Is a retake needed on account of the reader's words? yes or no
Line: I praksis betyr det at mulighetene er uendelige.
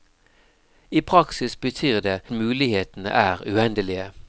yes